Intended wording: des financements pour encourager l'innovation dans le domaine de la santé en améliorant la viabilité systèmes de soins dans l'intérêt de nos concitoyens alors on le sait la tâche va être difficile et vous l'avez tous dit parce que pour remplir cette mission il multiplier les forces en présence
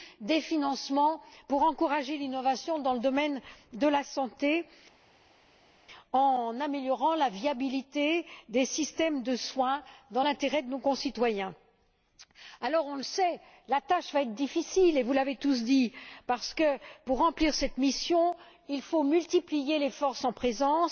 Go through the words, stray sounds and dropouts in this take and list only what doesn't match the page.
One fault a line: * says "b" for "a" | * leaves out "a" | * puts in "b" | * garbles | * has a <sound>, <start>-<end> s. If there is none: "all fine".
* puts in "des"
* puts in "faut"